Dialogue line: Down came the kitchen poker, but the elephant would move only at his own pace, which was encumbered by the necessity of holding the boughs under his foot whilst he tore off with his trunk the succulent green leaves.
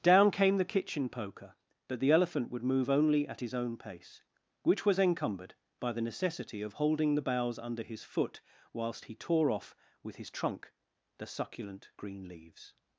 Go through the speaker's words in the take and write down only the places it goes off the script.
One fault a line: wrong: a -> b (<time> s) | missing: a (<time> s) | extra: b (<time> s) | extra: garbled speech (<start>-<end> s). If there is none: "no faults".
no faults